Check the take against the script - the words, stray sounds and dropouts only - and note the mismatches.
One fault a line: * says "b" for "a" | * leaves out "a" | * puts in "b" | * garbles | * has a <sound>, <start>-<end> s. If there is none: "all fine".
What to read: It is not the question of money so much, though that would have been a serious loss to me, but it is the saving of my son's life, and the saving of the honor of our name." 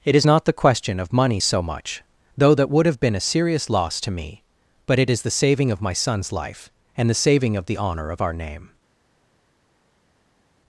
all fine